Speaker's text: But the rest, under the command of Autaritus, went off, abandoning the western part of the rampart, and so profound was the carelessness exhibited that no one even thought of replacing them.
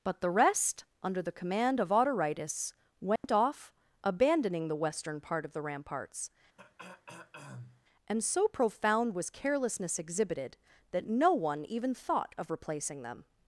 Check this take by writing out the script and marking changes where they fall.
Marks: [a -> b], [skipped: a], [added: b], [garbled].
But the rest, under the command of Autaritus, went off, abandoning the western part of the [rampart, -> ramparts] and so profound was [skipped: the] carelessness exhibited that no one even thought of replacing them.